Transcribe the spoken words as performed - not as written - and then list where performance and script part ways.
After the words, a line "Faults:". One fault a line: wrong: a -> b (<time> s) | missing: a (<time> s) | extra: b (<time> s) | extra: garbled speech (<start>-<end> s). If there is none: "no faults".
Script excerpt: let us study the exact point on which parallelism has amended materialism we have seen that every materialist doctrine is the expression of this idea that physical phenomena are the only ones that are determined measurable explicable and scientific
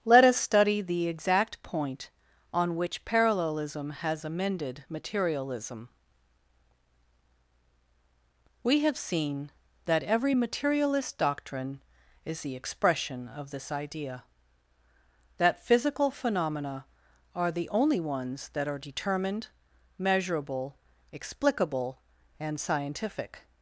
let us study the exact point on which parallelism has amended materialism we have seen that every materialist doctrine is the expression of this idea that physical phenomena are the only ones that are determined measurable explicable and scientific
Faults:
no faults